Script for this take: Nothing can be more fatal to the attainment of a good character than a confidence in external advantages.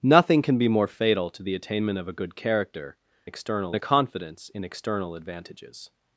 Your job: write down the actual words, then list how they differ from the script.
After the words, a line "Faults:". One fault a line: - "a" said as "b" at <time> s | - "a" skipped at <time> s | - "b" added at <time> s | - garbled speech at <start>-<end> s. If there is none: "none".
Nothing can be more fatal to the attainment of a good character external a confidence in external advantages.
Faults:
- "than" said as "external" at 3.2 s